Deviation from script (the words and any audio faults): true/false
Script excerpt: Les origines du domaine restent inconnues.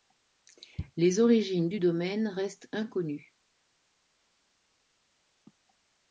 false